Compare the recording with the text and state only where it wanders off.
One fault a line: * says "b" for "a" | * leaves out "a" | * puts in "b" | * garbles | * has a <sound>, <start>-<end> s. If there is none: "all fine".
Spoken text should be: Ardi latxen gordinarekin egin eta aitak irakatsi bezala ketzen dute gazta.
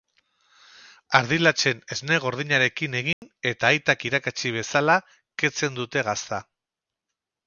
* puts in "esne"
* has a dropout, 3.1-3.2 s